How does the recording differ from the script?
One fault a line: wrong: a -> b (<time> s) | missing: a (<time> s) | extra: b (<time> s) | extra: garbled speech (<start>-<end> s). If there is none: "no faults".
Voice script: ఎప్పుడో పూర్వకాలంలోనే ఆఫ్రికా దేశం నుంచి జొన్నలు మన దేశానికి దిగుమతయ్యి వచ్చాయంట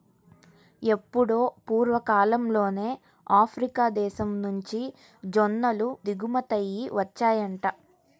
missing: మన దేశానికి (5.9 s)